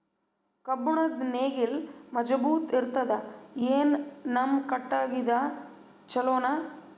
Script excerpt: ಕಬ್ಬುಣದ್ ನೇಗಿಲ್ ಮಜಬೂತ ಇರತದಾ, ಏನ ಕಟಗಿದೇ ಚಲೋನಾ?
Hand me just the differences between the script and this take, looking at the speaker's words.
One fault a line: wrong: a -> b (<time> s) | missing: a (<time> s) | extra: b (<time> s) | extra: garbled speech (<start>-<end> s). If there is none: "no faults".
extra: ನಮ್ಮ (4.3 s)